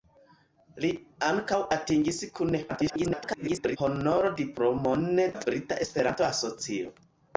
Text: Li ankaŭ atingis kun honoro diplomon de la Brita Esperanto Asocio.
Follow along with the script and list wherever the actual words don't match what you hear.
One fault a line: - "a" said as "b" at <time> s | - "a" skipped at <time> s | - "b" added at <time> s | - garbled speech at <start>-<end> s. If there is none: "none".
- garbled speech at 2.7-3.8 s
- "de" skipped at 5.1 s